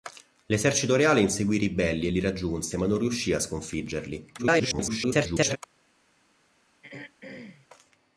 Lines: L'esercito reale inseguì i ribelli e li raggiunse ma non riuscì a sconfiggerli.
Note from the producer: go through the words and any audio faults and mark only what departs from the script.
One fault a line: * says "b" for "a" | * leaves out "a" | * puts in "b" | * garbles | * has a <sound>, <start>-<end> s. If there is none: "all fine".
* garbles
* has a throat clearing, 6.8-7.7 s